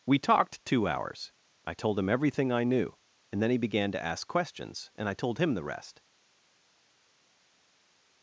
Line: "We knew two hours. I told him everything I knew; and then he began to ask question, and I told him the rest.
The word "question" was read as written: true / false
false